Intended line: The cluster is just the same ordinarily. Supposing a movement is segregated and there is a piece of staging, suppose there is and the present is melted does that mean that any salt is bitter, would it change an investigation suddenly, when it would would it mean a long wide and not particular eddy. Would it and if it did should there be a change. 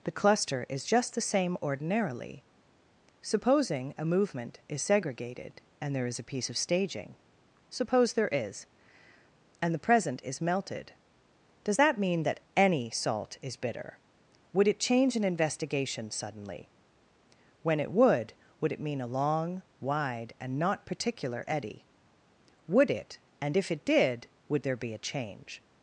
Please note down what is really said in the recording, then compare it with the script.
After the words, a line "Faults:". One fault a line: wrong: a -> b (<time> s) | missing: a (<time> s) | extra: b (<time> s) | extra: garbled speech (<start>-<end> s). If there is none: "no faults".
The cluster is just the same ordinarily. Supposing a movement is segregated and there is a piece of staging, suppose there is and the present is melted does that mean that any salt is bitter, would it change an investigation suddenly, when it would would it mean a long wide and not particular eddy. Would it and if it did would there be a change.
Faults:
wrong: should -> would (24.5 s)